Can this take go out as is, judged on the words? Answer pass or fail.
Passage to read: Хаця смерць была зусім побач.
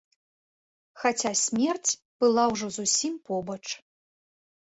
fail